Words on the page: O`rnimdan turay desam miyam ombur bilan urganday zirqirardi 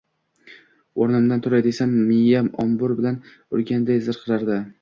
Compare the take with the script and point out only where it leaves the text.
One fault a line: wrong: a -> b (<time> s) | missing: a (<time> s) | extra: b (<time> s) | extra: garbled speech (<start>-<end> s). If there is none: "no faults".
no faults